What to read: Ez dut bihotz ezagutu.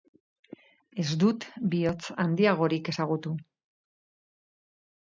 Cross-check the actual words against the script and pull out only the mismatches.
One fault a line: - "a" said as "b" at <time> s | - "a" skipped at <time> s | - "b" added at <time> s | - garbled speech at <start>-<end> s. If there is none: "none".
- "handiagorik" added at 2.2 s